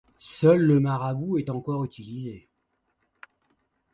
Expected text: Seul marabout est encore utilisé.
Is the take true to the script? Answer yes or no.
no